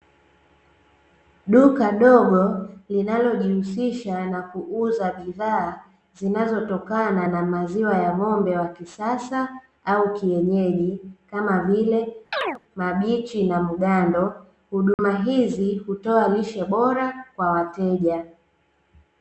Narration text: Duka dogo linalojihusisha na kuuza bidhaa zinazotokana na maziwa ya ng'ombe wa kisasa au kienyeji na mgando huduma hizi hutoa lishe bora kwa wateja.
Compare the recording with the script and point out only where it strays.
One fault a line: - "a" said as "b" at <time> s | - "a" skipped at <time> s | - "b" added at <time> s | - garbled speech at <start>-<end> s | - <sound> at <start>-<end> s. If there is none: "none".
- "kama vile mabichi" added at 11.3 s
- chirp at 12.3-12.6 s
- dropout at 14.9-15.0 s